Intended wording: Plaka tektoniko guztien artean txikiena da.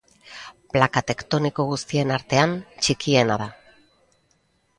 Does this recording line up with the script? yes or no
yes